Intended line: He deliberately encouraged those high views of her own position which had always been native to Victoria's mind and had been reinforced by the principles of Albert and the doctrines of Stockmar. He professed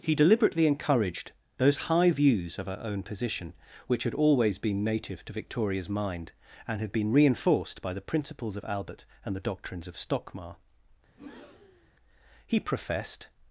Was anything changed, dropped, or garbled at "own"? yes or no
no